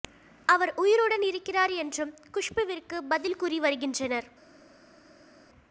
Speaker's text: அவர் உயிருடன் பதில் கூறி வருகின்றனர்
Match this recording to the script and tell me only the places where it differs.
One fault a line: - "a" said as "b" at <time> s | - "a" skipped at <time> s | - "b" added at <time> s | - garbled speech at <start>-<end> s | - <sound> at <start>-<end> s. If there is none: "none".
- "இருக்கிறார் என்றும் குஷ்புவிற்கு" added at 1.2 s